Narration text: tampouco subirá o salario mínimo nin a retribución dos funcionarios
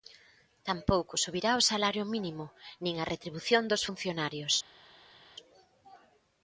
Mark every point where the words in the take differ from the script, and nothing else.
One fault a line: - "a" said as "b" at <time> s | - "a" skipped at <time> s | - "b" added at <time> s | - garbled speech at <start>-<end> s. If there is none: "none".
none